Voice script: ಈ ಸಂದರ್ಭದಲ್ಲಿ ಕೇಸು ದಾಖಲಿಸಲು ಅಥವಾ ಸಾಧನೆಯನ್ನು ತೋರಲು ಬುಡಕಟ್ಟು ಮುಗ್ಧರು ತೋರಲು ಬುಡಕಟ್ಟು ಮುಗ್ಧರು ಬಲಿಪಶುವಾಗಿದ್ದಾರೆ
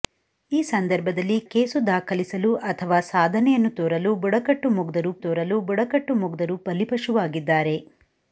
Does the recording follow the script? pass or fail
pass